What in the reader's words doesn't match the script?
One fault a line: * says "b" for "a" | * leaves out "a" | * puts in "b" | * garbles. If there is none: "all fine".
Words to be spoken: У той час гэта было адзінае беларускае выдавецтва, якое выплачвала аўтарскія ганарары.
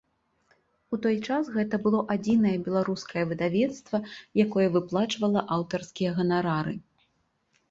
all fine